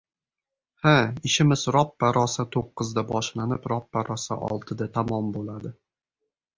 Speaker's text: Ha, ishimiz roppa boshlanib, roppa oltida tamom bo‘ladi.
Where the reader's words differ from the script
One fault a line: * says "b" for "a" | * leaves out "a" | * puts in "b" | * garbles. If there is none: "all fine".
* puts in "rosa to‘qqizda"
* puts in "rosa"